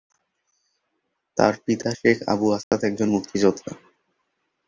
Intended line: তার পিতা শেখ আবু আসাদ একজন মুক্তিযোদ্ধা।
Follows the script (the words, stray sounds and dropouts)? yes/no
no